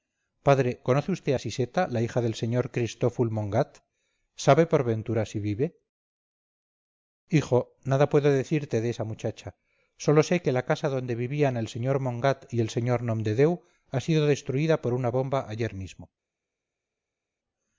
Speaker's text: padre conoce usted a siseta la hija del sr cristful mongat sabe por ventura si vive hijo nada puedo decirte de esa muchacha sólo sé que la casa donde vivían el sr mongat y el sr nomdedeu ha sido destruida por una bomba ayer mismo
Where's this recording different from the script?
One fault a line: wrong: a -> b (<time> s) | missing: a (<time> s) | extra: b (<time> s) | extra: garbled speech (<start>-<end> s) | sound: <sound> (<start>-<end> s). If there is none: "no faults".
no faults